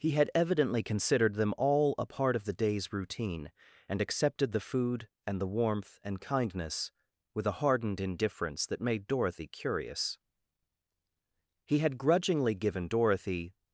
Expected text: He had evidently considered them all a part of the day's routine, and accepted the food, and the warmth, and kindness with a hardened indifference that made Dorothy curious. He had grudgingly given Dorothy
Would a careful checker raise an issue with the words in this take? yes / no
no